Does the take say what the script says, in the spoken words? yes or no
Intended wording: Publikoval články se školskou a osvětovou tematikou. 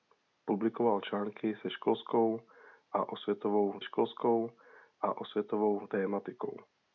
no